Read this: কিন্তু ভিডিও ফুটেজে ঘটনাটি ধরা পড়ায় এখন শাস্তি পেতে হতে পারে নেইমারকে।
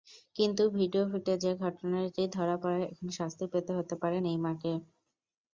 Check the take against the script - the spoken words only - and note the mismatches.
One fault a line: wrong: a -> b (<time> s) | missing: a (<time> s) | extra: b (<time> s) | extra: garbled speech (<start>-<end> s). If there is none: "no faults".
no faults